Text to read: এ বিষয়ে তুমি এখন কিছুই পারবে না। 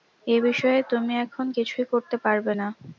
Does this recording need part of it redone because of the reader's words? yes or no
yes